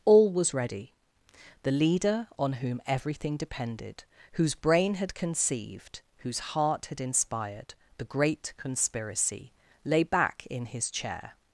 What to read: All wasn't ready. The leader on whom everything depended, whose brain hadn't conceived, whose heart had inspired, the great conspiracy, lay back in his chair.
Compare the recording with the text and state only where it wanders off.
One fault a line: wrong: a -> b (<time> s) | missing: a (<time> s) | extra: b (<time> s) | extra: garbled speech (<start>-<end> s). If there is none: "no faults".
wrong: wasn't -> was (0.3 s)
wrong: hadn't -> had (5.0 s)